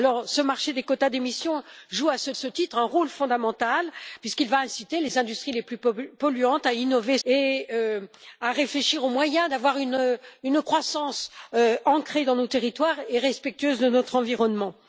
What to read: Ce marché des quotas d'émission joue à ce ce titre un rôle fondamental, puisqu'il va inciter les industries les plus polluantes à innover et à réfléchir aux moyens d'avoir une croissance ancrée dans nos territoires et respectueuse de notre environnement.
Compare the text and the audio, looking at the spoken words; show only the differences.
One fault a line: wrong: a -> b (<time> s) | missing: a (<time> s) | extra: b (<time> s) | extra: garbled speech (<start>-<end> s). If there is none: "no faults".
no faults